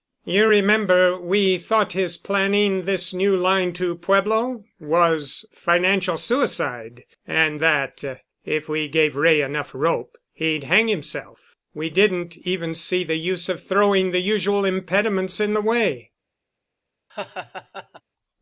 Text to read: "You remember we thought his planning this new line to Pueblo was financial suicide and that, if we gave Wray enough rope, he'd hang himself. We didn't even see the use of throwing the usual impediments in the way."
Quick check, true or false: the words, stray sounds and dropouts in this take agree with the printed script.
false